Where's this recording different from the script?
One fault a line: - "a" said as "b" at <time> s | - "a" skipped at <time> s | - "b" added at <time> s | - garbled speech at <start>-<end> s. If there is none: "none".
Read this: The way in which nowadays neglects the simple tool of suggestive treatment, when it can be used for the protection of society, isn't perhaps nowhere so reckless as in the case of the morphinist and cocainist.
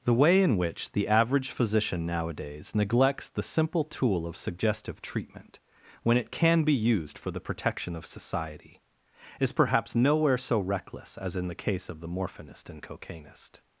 - "the average physician" added at 0.9 s
- "isn't" said as "is" at 9.4 s